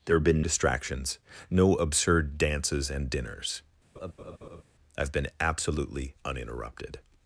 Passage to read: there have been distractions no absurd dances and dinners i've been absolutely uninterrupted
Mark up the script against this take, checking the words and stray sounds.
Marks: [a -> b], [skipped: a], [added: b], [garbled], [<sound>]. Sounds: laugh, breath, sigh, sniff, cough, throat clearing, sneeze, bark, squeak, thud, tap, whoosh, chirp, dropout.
there have been distractions no absurd dances and dinners [laugh] i've been absolutely uninterrupted